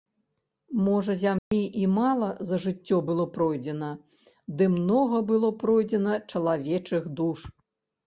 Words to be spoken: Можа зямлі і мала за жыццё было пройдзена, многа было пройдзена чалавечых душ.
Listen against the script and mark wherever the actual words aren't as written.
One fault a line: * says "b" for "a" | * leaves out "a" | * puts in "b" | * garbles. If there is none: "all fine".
* puts in "ды"